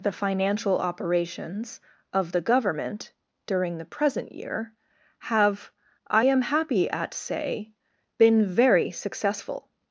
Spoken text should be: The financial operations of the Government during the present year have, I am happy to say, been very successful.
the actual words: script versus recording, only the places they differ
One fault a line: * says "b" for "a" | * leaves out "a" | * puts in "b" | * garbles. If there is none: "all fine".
* says "at" for "to"